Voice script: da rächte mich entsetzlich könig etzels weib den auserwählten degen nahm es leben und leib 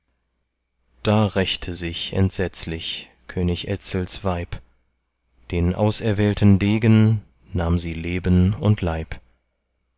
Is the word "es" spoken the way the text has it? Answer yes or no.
no